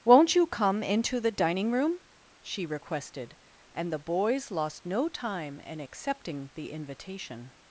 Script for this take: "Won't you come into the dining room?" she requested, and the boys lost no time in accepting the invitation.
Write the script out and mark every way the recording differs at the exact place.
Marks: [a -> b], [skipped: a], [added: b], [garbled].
"Won't you come into the dining room?" she requested, and the boys lost no time in accepting the invitation.